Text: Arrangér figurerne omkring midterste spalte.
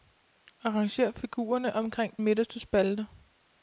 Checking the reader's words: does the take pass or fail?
pass